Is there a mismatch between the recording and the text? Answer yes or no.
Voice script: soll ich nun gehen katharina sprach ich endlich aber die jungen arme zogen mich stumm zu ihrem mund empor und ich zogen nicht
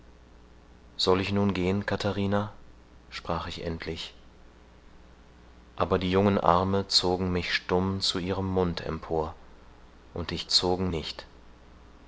no